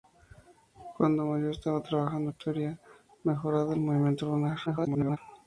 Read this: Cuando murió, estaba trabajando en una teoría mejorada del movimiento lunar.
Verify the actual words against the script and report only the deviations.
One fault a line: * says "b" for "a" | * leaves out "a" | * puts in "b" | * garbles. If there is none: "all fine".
* leaves out "en"
* garbles